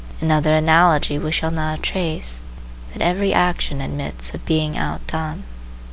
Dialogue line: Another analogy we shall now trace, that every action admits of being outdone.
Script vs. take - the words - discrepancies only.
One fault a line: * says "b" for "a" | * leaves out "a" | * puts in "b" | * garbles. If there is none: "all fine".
all fine